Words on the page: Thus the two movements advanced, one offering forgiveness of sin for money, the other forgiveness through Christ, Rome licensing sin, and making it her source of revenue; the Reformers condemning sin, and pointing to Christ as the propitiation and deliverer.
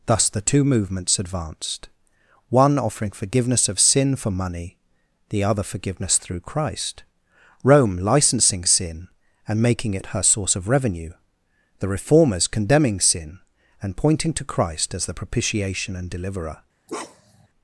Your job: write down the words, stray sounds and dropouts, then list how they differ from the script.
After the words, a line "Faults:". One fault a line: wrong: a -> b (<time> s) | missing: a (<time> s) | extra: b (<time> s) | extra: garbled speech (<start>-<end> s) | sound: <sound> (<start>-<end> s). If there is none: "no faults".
Thus the two movements advanced, one offering forgiveness of sin for money, the other forgiveness through Christ, Rome licensing sin, and making it her source of revenue; the Reformers condemning sin, and pointing to Christ as the propitiation and deliverer.
Faults:
sound: bark (16.9-17.5 s)